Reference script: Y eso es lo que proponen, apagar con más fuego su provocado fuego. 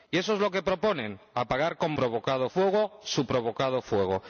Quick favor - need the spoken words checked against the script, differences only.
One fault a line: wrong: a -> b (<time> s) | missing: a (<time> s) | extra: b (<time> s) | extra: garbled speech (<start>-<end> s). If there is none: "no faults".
wrong: más -> provocado (1.9 s)